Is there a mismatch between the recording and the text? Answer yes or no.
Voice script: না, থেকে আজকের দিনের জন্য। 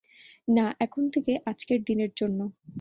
yes